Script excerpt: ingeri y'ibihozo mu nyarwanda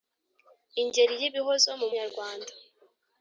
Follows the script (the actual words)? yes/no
yes